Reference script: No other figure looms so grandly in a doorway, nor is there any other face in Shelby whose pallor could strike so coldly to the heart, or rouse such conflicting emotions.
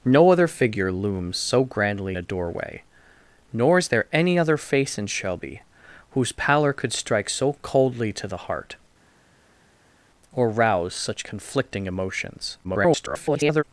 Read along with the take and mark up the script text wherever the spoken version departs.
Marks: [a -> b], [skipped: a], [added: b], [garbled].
No other figure looms so grandly [skipped: in] a doorway, nor is there any other face in Shelby whose pallor could strike so coldly to the heart, or rouse such conflicting emotions. [garbled]